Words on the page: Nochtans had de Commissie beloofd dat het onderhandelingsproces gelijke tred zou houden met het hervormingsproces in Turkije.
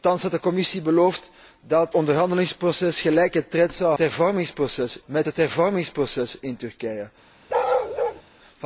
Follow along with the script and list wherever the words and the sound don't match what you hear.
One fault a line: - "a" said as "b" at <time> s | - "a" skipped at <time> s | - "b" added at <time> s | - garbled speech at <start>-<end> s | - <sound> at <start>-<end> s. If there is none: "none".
- "het" skipped at 1.9 s
- "houden" said as "hervormingsproces" at 4.0 s
- bark at 7.5-8.2 s